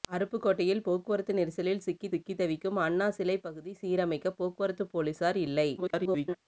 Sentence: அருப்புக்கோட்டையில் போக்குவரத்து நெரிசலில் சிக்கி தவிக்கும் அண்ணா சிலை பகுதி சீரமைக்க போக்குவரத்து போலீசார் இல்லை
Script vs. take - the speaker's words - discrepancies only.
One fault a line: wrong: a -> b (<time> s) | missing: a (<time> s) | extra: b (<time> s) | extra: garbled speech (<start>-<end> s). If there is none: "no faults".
extra: சிக்கி (2.1 s)
extra: garbled speech (5.8-6.4 s)